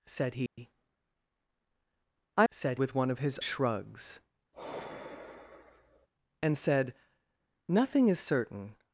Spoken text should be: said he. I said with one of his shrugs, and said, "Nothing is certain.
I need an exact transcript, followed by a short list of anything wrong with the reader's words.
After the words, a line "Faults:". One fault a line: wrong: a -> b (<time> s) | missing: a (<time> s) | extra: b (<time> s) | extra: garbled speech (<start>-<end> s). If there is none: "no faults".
said he. I said with one of his shrugs, and said, "Nothing is certain.
Faults:
no faults